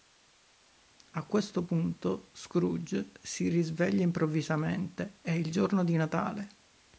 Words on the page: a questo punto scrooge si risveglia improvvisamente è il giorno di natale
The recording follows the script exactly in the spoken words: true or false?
true